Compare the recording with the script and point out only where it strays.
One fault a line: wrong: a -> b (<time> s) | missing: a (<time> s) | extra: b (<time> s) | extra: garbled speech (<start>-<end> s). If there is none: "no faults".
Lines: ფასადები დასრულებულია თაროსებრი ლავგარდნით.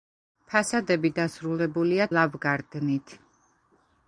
missing: თაროსებრი (2.1 s)